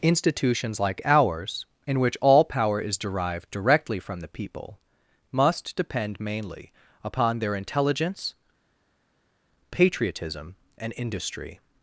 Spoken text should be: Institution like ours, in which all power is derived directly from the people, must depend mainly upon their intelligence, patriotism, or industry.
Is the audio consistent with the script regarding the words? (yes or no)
no